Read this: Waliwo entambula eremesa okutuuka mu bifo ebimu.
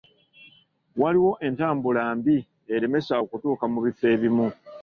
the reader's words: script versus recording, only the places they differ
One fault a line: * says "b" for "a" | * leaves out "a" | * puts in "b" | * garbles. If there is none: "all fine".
* puts in "mbi"